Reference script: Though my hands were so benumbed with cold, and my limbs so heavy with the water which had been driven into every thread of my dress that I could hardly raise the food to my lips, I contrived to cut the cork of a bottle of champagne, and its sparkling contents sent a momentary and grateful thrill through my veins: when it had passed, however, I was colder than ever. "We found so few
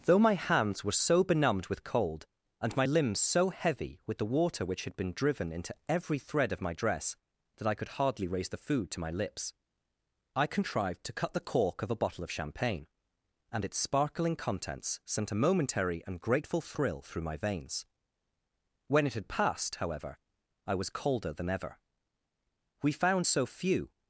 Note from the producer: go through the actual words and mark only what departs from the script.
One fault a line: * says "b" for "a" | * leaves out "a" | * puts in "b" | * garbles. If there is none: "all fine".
all fine